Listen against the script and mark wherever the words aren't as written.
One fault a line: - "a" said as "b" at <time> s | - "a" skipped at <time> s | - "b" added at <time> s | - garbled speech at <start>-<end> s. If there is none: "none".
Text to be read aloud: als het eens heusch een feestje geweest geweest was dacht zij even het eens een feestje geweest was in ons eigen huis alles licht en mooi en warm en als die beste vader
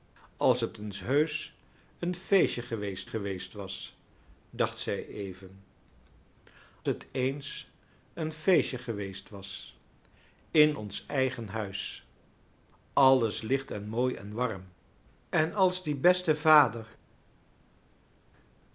none